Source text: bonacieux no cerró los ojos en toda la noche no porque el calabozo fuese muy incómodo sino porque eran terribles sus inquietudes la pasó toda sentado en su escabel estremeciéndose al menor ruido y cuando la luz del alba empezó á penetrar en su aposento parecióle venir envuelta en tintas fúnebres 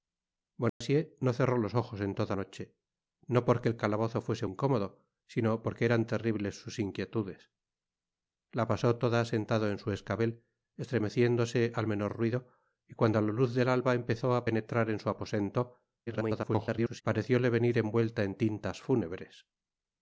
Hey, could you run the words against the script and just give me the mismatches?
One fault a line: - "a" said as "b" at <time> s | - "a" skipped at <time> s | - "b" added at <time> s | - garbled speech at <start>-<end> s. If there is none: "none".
- "la" skipped at 2.4 s
- "muy" skipped at 4.5 s
- garbled speech at 16.1-17.0 s